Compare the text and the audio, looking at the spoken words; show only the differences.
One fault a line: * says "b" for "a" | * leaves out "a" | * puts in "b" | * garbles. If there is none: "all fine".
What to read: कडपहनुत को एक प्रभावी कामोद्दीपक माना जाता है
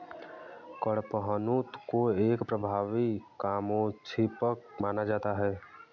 all fine